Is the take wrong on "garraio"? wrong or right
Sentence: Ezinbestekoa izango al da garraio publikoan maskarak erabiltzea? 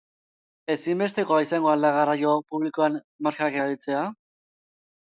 right